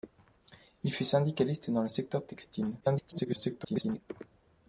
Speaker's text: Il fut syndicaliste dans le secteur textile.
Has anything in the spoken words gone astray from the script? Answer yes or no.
yes